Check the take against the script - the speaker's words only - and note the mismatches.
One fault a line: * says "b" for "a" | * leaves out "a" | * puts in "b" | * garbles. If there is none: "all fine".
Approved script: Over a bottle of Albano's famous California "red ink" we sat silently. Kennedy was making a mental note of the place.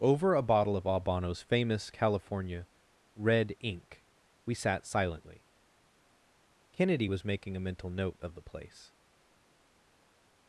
all fine